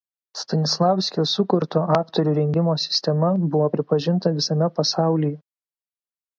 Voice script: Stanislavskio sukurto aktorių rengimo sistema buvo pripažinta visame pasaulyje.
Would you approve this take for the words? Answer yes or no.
yes